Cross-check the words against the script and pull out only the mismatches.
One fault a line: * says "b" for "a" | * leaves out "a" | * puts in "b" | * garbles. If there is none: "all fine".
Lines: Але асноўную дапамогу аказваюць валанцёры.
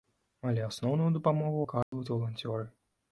all fine